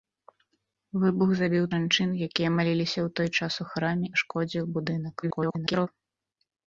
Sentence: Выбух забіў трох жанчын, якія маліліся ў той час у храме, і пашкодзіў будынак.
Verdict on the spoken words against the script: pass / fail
fail